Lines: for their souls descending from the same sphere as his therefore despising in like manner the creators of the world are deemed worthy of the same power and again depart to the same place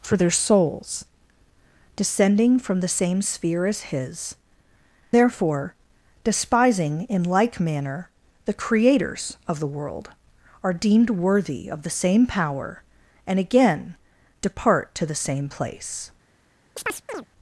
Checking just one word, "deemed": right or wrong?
right